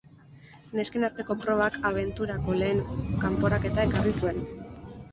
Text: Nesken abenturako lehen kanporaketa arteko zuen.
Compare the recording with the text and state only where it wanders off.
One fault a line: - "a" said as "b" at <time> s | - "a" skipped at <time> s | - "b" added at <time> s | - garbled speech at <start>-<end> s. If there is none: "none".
- "arteko probak" added at 1.1 s
- "arteko" said as "ekarri" at 3.9 s